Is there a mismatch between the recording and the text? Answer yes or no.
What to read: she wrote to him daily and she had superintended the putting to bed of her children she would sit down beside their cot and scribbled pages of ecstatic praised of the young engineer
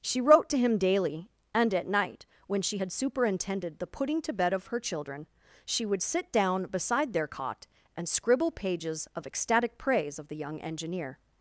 yes